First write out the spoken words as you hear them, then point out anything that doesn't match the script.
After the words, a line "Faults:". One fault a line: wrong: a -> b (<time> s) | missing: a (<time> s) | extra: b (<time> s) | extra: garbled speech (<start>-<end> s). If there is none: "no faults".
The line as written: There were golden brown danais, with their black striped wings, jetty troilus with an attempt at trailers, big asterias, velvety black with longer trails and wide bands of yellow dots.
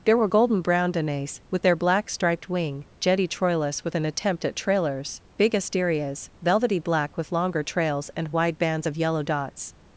There were golden brown danais, with their black striped wing, jetty troilus with an attempt at trailers, big asterias, velvety black with longer trails and wide bands of yellow dots.
Faults:
wrong: wings -> wing (2.5 s)